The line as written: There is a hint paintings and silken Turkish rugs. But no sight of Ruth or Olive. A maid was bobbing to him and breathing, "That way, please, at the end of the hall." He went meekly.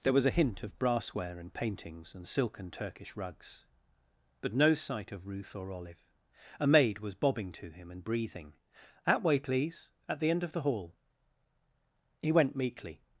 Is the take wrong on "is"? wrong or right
wrong